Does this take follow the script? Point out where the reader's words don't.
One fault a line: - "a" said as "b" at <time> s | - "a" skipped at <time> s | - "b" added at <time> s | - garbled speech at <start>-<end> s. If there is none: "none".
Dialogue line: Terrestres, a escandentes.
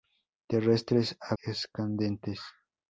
none